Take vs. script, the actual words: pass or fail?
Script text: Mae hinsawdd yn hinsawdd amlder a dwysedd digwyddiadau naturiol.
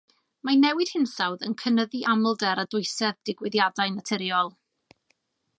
fail